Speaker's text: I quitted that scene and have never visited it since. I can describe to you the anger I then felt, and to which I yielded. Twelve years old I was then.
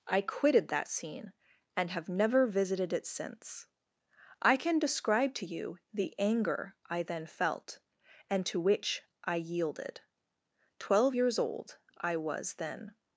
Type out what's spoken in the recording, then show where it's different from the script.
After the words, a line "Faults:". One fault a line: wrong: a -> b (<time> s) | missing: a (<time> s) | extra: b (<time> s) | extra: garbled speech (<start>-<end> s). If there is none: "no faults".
I quitted that scene and have never visited it since. I can describe to you the anger I then felt, and to which I yielded. Twelve years old I was then.
Faults:
no faults